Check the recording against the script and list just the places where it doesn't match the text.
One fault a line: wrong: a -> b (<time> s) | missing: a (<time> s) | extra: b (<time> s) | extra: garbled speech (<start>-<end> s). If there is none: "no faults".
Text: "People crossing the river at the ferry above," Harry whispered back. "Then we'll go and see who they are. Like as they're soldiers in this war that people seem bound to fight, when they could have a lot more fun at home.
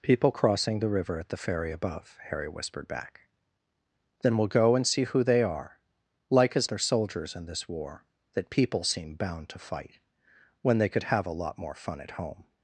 no faults